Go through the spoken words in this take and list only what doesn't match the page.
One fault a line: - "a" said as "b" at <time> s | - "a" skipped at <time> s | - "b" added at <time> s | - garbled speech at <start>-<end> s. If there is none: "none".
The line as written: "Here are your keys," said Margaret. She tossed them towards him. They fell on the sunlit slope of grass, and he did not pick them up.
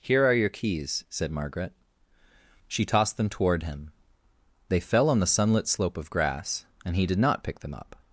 - "towards" said as "toward" at 3.3 s